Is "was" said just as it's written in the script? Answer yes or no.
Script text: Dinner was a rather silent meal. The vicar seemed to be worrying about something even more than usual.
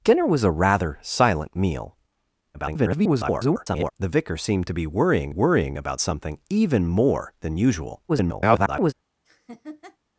yes